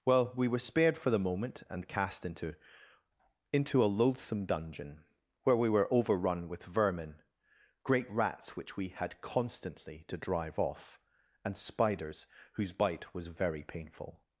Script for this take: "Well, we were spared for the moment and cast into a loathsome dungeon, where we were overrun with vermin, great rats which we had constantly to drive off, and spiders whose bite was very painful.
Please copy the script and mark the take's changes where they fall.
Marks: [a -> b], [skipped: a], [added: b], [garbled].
"Well, we were spared for the moment and cast into [added: into] a loathsome dungeon, where we were overrun with vermin, great rats which we had constantly to drive off, and spiders whose bite was very painful.